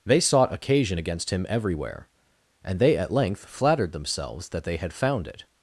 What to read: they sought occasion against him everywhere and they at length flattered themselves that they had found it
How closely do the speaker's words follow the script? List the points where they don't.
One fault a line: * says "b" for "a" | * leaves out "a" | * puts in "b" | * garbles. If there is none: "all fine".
all fine